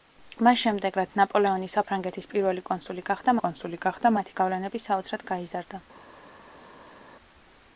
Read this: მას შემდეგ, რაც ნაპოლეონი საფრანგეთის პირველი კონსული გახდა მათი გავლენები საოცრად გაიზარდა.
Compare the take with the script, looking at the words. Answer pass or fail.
fail